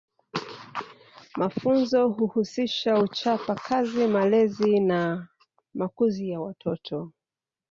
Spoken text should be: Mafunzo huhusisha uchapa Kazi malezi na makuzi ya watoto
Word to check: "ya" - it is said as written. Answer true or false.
true